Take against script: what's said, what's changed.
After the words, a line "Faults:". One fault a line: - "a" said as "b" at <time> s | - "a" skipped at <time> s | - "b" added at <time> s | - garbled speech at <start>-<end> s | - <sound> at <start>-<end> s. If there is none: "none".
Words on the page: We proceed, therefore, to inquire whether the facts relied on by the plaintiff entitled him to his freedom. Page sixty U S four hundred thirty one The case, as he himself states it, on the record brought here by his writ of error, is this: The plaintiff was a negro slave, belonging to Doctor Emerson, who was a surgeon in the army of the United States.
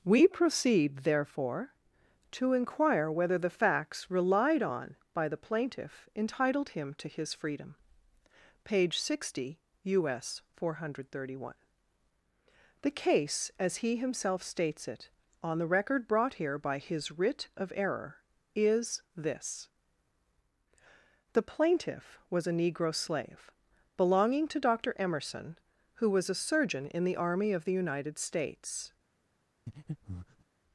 We proceed, therefore, to inquire whether the facts relied on by the plaintiff entitled him to his freedom. Page sixty U S four hundred thirty one The case, as he himself states it, on the record brought here by his writ of error, is this: The plaintiff was a negro slave, belonging to Doctor Emerson, who was a surgeon in the army of the United States.
Faults:
- breath at 29.7-30.4 s